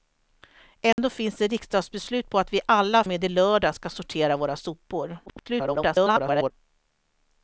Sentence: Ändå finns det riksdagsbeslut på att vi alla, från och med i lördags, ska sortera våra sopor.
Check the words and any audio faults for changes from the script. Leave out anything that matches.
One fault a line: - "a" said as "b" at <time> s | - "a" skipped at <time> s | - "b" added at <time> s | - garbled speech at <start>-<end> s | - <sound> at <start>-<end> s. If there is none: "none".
- dropout at 0.9-1.0 s
- "från" skipped at 3.0 s
- garbled speech at 5.3-6.5 s